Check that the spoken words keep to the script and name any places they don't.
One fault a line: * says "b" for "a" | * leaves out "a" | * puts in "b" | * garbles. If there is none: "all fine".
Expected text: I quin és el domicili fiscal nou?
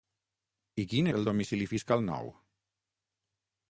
* leaves out "és"